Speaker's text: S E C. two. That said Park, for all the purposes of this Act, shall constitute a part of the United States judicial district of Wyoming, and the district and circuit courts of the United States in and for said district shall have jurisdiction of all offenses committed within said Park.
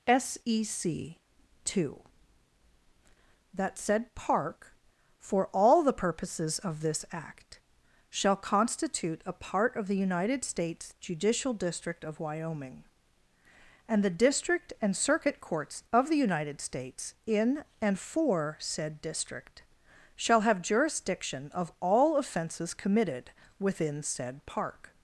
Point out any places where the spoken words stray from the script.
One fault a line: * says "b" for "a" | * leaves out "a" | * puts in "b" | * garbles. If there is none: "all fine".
all fine